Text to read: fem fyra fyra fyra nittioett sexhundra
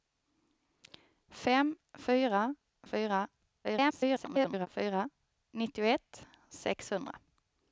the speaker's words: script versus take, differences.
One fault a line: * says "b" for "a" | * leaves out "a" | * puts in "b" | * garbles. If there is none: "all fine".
* garbles